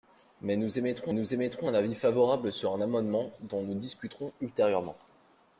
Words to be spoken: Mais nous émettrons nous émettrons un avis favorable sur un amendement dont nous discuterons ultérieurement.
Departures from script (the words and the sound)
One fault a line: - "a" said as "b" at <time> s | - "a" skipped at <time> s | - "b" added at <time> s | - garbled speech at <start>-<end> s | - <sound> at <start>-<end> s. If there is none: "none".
none